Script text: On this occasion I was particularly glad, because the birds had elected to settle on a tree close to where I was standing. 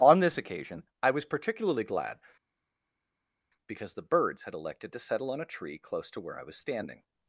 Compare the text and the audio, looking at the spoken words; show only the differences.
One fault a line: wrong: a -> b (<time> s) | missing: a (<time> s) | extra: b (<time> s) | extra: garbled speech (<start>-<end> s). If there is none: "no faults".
no faults